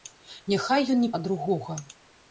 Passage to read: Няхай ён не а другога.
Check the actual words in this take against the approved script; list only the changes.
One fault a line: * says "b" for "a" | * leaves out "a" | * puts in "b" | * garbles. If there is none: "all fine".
all fine